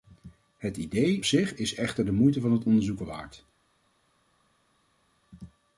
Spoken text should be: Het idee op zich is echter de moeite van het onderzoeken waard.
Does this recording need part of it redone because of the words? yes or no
yes